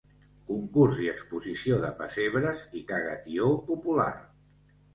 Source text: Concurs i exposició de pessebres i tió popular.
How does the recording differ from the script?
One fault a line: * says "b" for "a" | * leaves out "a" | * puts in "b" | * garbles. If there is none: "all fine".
* puts in "caga"